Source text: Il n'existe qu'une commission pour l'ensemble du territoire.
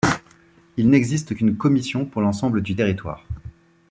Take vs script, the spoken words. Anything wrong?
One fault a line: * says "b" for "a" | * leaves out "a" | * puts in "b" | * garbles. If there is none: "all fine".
all fine